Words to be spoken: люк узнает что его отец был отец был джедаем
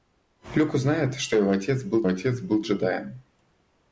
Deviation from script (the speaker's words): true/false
false